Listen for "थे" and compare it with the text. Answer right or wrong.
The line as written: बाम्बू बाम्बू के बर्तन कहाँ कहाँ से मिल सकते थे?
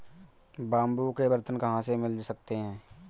wrong